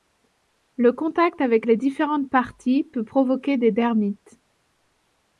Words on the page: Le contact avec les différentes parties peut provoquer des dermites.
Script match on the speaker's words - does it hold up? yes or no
yes